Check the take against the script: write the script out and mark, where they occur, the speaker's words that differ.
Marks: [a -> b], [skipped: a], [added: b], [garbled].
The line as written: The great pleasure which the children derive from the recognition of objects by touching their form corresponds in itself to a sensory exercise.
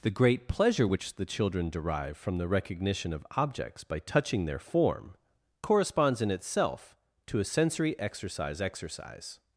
The great pleasure which the children derive from the recognition of objects by touching their form corresponds in itself to a sensory exercise. [added: exercise]